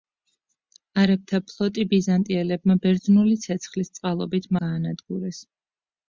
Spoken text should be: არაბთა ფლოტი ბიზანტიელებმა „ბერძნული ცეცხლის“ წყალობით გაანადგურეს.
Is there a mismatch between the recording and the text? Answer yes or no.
no